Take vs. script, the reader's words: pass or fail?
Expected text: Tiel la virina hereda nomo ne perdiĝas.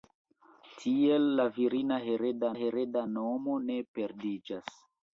fail